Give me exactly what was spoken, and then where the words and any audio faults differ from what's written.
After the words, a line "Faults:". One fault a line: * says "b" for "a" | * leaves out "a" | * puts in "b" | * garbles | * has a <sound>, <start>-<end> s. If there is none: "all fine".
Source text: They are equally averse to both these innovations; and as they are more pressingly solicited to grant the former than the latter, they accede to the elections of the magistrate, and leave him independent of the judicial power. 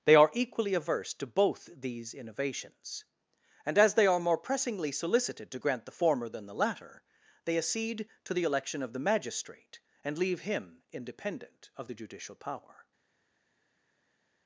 They are equally averse to both these innovations; and as they are more pressingly solicited to grant the former than the latter, they accede to the election of the magistrate, and leave him independent of the judicial power.
Faults:
* says "election" for "elections"